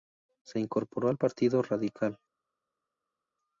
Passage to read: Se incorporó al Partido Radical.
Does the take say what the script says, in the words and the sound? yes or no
yes